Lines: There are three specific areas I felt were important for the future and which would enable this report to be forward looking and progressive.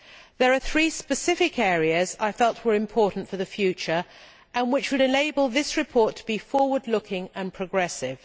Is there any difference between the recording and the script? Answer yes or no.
no